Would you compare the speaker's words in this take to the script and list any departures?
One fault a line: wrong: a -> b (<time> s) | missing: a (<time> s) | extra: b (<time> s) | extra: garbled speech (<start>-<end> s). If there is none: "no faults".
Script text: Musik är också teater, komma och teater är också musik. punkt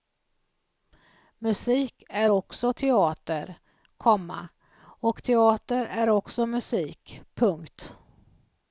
no faults